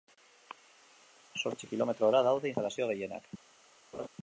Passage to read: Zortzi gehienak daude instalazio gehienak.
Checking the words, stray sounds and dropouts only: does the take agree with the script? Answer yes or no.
no